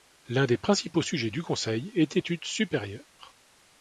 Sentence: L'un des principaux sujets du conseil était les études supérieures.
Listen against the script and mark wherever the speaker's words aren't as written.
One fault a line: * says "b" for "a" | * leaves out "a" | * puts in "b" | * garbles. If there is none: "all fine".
* leaves out "les"